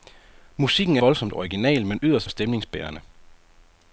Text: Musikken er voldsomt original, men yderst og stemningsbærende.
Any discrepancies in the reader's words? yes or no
no